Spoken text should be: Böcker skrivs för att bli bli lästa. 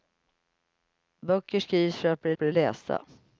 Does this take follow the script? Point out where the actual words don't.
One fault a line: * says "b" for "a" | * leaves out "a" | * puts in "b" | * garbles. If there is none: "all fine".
all fine